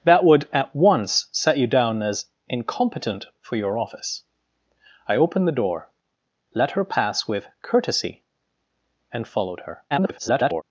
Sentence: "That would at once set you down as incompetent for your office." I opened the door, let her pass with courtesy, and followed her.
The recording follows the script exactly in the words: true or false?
false